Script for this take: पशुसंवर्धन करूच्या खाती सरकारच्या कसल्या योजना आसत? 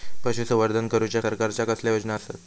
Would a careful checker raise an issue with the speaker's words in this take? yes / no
yes